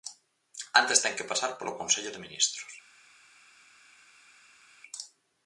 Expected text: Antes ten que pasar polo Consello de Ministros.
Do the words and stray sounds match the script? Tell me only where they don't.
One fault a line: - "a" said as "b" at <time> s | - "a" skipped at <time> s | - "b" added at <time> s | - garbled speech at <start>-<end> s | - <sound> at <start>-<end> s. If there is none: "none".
none